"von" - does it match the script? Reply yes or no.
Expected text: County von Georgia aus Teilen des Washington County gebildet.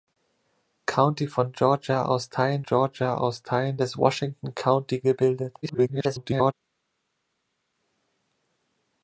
yes